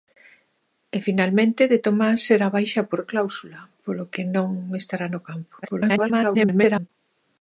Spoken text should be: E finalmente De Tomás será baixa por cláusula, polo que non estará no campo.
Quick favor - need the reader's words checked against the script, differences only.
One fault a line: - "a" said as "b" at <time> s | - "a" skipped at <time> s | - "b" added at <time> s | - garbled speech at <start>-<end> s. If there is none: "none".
- garbled speech at 5.6-6.9 s